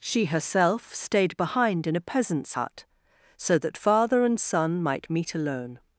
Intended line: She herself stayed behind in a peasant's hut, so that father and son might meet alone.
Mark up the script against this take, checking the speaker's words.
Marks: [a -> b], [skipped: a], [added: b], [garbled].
She herself stayed behind in a peasant's hut, so that father and son might meet alone.